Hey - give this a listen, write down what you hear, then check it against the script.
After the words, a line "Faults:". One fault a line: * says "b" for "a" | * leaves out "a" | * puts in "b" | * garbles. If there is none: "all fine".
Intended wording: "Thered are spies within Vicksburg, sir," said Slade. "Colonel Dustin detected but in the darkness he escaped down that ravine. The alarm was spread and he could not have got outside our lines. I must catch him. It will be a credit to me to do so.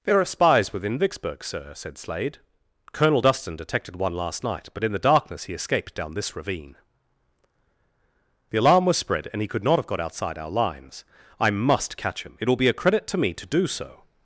"There are spies within Vicksburg, sir," said Slade. "Colonel Dustin detected one last night, but in the darkness he escaped down this ravine. The alarm was spread and he could not have got outside our lines. I must catch him. It will be a credit to me to do so.
Faults:
* says "There" for "Thered"
* puts in "one last night"
* says "this" for "that"